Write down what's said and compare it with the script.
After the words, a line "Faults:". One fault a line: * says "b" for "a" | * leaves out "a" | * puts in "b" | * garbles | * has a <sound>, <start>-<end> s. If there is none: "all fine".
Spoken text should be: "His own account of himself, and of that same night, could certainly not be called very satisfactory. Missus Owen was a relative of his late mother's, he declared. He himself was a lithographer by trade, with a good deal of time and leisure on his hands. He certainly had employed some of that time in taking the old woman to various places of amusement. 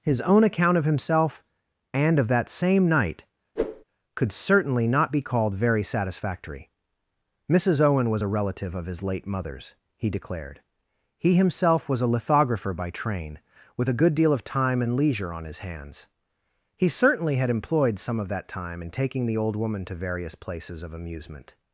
"His own account of himself, and of that same night, could certainly not be called very satisfactory. Missus Owen was a relative of his late mother's, he declared. He himself was a lithographer by train, with a good deal of time and leisure on his hands. He certainly had employed some of that time in taking the old woman to various places of amusement.
Faults:
* has a whoosh, 3.6-3.8 s
* says "train" for "trade"